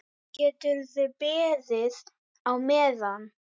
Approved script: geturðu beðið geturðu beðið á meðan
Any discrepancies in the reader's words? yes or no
yes